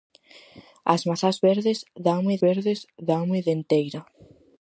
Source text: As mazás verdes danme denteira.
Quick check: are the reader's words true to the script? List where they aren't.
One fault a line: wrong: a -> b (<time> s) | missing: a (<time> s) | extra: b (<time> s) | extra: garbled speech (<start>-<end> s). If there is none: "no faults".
extra: verdes danme (2.4 s)